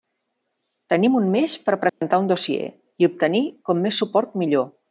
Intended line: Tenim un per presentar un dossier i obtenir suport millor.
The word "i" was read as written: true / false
true